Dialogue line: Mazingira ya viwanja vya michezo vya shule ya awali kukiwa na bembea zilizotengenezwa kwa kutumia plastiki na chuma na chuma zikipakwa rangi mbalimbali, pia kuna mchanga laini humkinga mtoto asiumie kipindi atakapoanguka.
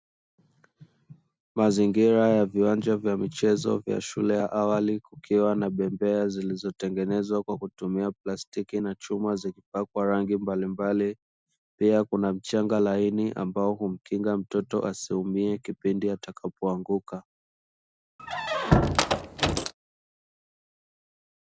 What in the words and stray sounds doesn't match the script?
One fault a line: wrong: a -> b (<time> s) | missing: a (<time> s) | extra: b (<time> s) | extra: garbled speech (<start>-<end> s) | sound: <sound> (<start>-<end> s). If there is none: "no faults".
missing: na chuma (9.4 s)
extra: ambao (13.3 s)
sound: squeak (18.2-19.7 s)